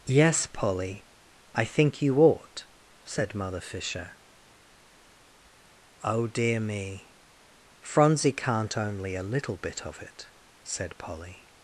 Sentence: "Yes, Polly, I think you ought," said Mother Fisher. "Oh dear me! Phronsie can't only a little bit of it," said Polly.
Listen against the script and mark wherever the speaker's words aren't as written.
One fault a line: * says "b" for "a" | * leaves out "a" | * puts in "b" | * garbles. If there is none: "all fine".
all fine